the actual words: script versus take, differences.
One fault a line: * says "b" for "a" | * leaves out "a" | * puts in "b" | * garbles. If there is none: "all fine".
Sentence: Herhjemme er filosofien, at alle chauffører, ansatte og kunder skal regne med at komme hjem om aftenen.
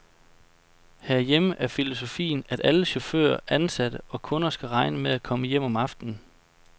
all fine